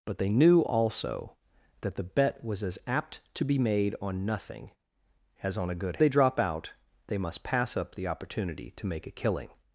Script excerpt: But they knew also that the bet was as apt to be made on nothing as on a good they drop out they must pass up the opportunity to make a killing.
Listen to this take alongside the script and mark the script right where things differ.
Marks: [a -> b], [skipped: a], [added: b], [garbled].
But they knew also that the bet was as apt to be made on nothing as on a good they drop out they must pass up the opportunity to make a killing.